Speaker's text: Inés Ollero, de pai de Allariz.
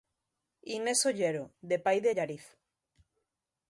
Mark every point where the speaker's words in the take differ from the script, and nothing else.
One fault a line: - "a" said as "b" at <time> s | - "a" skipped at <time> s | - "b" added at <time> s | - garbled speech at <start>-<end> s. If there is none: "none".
none